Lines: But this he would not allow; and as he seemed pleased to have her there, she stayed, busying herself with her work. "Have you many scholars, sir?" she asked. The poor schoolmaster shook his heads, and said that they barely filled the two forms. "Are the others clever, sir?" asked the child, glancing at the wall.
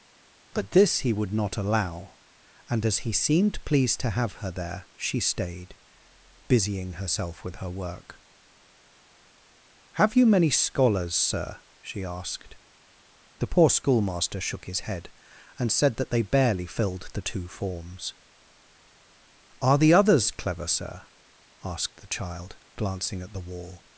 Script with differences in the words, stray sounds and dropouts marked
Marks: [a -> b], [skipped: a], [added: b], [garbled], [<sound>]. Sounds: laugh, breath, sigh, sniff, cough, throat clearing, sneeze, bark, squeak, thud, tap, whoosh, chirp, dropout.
But this he would not allow; and as he seemed pleased to have her there, she stayed, busying herself with her work. "Have you many scholars, sir?" she asked. The poor schoolmaster shook his [heads, -> head] and said that they barely filled the two forms. "Are the others clever, sir?" asked the child, glancing at the wall.